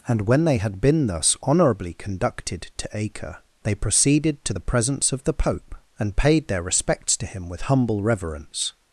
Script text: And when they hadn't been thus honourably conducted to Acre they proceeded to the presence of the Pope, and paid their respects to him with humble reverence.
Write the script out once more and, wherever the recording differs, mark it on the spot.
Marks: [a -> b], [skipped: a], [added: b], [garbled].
And when they [hadn't -> had] been thus honourably conducted to Acre they proceeded to the presence of the Pope, and paid their respects to him with humble reverence.